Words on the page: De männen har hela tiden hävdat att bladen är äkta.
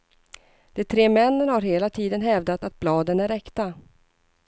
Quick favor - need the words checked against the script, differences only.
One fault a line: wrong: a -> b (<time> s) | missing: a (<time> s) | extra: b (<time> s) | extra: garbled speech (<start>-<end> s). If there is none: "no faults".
extra: tre (0.8 s)